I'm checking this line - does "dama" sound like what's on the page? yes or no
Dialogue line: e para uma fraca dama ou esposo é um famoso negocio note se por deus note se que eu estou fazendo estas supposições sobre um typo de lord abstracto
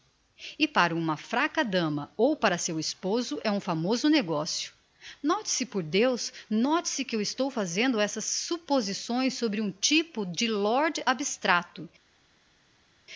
yes